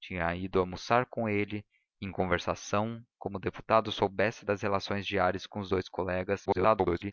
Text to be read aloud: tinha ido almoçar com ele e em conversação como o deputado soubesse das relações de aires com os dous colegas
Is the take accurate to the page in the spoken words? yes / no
no